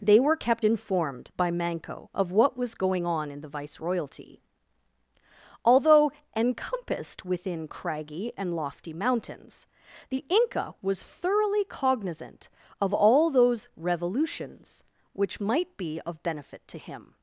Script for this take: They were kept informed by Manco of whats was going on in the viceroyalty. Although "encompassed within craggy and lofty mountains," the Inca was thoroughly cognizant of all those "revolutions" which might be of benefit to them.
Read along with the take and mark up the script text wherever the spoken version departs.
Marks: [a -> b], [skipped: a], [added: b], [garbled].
They were kept informed by Manco of [whats -> what] was going on in the viceroyalty. Although "encompassed within craggy and lofty mountains," the Inca was thoroughly cognizant of all those "revolutions" which might be of benefit to [them. -> him]